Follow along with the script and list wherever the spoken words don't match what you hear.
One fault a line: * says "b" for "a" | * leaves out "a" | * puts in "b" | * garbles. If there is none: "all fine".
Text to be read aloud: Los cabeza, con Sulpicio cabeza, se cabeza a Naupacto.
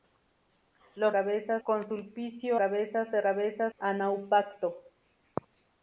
all fine